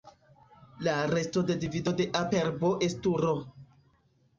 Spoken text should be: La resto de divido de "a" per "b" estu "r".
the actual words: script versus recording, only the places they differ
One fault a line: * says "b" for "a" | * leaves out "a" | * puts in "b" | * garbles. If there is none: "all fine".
all fine